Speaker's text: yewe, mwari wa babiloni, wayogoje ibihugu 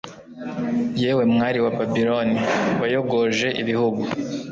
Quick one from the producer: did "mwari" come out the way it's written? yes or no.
yes